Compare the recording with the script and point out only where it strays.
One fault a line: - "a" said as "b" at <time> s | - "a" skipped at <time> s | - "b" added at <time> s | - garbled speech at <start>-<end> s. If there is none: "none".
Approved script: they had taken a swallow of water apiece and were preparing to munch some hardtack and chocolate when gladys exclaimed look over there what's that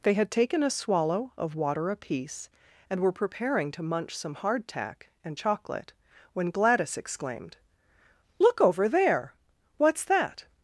none